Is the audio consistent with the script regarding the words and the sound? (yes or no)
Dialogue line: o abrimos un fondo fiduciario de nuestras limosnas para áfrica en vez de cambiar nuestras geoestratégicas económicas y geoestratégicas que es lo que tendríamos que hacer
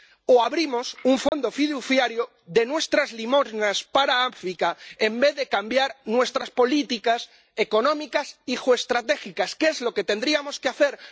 no